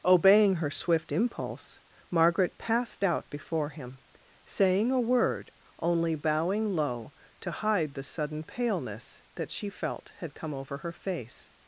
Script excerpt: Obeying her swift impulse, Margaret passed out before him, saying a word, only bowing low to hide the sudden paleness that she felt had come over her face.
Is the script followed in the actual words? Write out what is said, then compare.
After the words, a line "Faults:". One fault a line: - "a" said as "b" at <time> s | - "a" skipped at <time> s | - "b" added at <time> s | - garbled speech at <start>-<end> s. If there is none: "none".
Obeying her swift impulse, Margaret passed out before him, saying a word, only bowing low to hide the sudden paleness that she felt had come over her face.
Faults:
none